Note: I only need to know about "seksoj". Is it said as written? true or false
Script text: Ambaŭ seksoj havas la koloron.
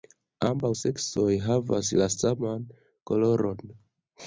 true